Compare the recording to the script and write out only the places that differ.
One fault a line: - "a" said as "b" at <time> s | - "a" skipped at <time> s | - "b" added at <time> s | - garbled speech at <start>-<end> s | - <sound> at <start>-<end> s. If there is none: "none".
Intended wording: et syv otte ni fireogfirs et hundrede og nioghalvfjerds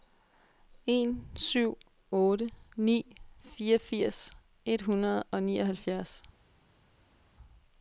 - "et" said as "en" at 0.9 s